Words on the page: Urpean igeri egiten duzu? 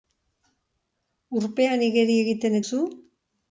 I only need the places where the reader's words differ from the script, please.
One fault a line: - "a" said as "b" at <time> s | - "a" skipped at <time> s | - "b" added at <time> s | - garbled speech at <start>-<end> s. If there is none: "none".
none